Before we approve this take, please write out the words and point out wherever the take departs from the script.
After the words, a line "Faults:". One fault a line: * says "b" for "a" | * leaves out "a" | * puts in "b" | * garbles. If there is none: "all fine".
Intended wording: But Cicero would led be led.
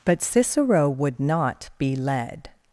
But Cicero would not be led.
Faults:
* says "not" for "led"